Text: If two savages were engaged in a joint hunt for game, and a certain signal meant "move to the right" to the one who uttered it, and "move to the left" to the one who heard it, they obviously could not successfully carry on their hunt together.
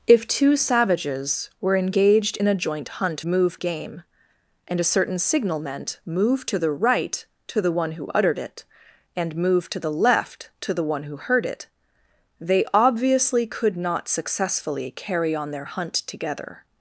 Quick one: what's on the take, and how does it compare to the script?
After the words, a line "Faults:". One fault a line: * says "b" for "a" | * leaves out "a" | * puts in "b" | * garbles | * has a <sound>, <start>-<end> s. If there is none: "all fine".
If two savages were engaged in a joint hunt move game, and a certain signal meant "move to the right" to the one who uttered it, and "move to the left" to the one who heard it, they obviously could not successfully carry on their hunt together.
Faults:
* says "move" for "for"